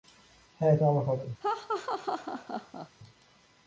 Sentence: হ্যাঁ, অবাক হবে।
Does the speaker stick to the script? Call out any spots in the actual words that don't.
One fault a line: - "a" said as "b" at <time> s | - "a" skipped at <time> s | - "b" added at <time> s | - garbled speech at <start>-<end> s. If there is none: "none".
none